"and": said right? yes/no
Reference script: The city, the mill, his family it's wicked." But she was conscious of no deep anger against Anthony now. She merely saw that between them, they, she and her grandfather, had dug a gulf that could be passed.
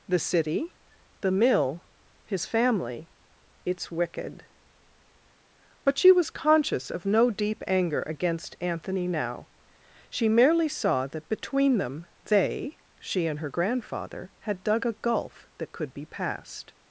yes